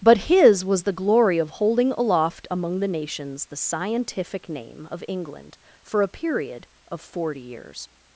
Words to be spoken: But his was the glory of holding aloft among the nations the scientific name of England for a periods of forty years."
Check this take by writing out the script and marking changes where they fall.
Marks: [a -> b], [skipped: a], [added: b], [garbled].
But his was the glory of holding aloft among the nations the scientific name of England for a [periods -> period] of forty years."